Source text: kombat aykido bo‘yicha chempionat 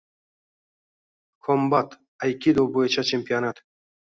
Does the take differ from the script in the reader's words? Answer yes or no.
no